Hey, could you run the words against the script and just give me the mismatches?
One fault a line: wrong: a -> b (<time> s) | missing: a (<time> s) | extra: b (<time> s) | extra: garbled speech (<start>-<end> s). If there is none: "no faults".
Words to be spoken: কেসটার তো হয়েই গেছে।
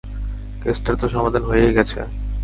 extra: সমাধান (1.1 s)